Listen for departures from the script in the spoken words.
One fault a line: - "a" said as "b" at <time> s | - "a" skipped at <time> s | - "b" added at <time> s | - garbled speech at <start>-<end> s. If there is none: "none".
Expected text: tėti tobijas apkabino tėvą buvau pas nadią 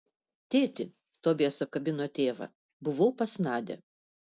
none